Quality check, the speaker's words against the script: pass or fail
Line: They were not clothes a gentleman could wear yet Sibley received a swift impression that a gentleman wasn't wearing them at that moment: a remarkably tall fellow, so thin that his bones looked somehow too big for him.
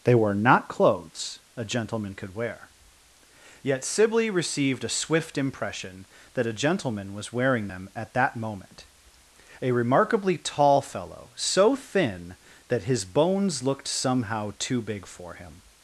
fail